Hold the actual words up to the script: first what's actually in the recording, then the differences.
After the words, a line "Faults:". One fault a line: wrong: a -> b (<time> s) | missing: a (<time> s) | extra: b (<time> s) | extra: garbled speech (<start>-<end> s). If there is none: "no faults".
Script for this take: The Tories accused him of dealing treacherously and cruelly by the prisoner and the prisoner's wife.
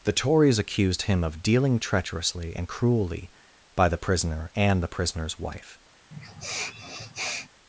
The Tories accused him of dealing treacherously and cruelly by the prisoner and the prisoner's wife.
Faults:
no faults